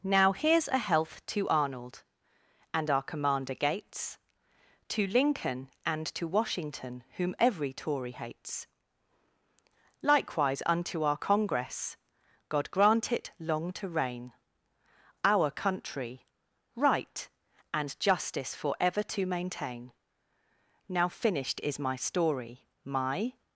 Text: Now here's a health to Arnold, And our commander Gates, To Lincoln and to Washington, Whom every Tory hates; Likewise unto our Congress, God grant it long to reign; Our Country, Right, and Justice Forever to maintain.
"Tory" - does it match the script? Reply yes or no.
yes